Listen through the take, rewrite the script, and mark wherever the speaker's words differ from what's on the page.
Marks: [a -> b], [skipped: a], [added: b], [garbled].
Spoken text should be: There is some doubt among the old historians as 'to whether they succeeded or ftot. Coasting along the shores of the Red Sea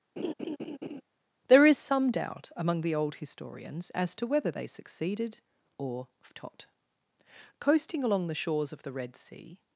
There is some doubt among the old historians as 'to whether they succeeded or ftot. Coasting along the shores of the Red Sea